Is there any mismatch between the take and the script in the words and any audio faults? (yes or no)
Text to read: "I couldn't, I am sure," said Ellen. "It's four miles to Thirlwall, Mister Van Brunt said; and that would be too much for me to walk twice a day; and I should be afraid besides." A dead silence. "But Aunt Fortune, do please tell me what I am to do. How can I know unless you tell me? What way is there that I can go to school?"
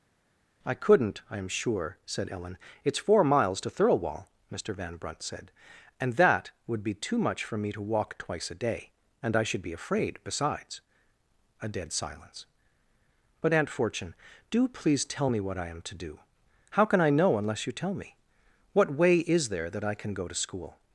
no